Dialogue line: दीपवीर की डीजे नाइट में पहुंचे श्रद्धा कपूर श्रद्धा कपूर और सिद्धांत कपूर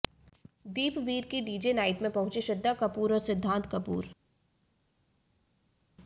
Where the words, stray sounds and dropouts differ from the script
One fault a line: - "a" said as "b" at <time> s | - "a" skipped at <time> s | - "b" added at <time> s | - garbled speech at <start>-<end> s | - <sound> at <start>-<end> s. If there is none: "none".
- "श्रद्धा कपूर" skipped at 3.1 s